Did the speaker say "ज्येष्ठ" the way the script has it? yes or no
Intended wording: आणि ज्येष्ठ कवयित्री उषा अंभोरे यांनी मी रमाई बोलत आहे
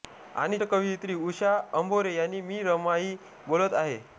no